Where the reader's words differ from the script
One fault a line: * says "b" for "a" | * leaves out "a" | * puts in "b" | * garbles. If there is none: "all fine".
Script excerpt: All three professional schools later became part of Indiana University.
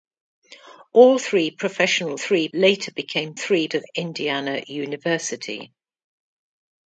* says "three" for "schools"
* says "three" for "part"